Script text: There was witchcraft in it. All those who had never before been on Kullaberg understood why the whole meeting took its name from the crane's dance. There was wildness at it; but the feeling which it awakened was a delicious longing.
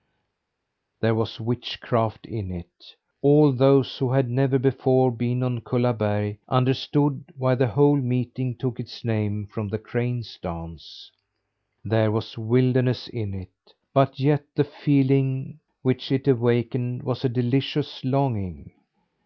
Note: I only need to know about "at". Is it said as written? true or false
false